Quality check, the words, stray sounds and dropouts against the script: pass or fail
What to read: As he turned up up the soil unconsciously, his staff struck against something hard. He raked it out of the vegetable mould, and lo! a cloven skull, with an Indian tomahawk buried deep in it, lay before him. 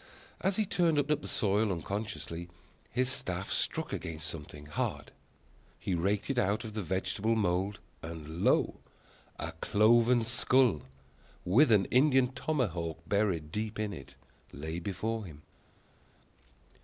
pass